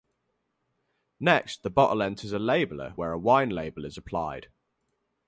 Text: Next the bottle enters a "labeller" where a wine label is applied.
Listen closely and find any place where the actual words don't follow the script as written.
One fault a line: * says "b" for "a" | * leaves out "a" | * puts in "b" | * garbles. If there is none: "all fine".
all fine